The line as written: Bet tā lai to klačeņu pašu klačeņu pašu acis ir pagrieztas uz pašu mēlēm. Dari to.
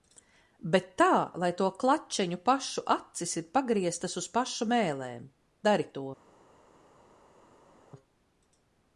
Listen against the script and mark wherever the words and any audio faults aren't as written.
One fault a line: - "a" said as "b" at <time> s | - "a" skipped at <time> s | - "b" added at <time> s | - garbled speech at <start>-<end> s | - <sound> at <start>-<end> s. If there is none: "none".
- "klačeņu pašu" skipped at 2.9 s